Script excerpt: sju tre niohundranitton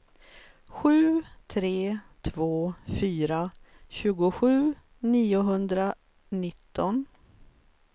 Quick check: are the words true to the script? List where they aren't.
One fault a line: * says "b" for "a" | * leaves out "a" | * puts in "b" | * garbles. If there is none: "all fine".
* puts in "två fyra tjugosju"